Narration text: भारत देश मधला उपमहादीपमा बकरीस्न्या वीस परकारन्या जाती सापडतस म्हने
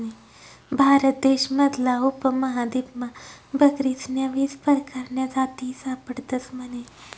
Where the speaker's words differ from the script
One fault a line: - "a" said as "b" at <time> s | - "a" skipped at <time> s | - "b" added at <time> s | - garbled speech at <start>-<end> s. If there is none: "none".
none